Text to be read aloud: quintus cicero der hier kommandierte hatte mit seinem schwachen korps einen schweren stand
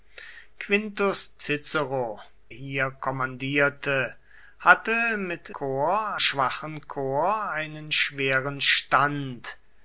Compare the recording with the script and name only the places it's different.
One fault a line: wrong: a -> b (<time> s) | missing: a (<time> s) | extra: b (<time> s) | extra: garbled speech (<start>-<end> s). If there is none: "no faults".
missing: der (2.2 s)
wrong: seinem -> korps (5.5 s)